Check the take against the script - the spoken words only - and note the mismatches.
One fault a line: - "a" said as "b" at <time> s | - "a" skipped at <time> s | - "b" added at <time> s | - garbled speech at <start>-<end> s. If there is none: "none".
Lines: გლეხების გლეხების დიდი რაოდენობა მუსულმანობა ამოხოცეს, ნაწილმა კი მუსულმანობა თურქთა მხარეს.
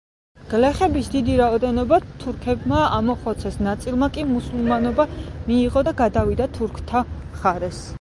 - "გლეხების" skipped at 1.1 s
- "მუსულმანობა" said as "თურქებმა" at 2.2 s
- "მიიღო და გადავიდა" added at 5.5 s